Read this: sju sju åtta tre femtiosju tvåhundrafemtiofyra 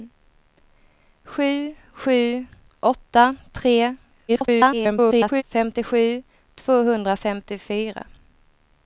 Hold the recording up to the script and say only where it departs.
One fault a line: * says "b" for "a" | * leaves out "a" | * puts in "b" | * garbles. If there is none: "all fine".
* garbles